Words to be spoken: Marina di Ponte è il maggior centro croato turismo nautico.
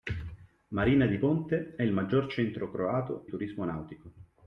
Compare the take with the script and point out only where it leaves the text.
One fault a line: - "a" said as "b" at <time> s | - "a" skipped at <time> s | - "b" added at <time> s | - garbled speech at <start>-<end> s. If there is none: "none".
none